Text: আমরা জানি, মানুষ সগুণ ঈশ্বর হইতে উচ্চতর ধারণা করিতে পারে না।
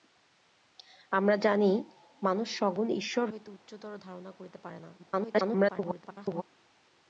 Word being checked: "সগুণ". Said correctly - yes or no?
yes